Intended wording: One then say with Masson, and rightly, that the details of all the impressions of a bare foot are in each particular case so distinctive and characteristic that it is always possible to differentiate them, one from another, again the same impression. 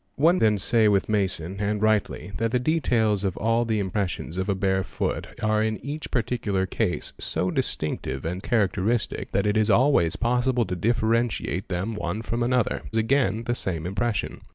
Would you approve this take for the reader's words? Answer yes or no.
yes